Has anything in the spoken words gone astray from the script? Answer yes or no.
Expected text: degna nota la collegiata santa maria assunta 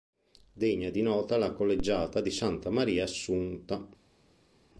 yes